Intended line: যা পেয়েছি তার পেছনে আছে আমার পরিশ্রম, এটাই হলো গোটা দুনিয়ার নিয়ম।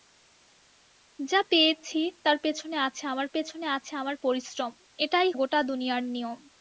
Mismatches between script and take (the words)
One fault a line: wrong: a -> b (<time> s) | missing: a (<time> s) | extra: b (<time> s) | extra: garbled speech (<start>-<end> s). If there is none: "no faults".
extra: পেছনে আছে আমার (3.3 s)
missing: হলো (5.3 s)